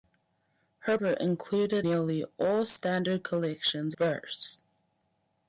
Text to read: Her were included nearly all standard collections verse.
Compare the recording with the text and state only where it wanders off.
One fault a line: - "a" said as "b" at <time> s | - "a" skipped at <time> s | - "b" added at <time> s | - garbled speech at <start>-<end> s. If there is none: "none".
none